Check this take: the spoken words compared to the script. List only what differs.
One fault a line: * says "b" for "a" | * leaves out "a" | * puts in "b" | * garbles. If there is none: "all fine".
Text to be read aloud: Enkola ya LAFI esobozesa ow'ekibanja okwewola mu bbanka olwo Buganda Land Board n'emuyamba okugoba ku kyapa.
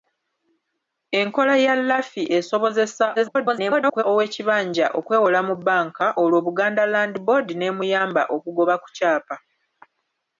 * garbles